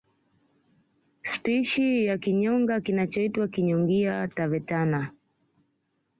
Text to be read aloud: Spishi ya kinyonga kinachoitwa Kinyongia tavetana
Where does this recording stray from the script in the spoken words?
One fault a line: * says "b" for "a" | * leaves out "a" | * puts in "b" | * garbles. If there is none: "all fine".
all fine